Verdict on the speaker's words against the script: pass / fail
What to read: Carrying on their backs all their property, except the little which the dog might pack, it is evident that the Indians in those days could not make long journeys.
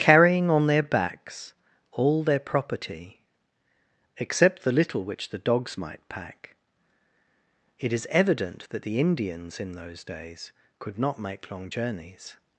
fail